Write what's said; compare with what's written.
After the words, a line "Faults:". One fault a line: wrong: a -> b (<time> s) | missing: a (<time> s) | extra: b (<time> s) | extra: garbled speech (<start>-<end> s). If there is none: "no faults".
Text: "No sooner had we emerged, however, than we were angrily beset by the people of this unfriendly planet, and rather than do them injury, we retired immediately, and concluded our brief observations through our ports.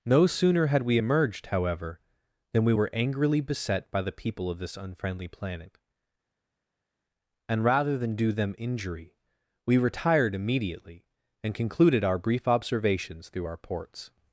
"No sooner had we emerged, however, than we were angrily beset by the people of this unfriendly planet, and rather than do them injury, we retired immediately, and concluded our brief observations through our ports.
Faults:
no faults